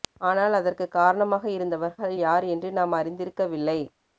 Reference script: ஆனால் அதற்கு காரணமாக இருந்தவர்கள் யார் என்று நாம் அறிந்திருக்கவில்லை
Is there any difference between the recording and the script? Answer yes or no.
no